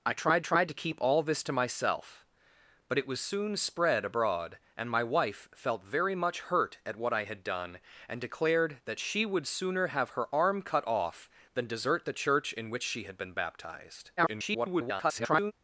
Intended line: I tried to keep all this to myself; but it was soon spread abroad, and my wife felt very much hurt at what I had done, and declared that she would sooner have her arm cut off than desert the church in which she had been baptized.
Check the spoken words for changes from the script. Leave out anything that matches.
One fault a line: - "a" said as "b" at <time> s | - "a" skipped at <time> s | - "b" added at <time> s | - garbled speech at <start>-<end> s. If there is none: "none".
- "tried" added at 0.4 s
- garbled speech at 14.2-15.5 s